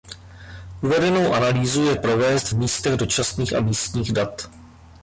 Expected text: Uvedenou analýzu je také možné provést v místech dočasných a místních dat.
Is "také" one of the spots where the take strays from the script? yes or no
yes